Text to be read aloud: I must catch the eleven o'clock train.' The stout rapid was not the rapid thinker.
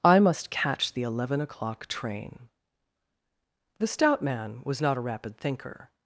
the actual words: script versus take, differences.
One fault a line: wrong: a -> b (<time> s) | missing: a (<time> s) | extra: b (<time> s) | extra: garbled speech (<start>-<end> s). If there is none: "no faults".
wrong: rapid -> man (4.2 s)
wrong: the -> a (5.0 s)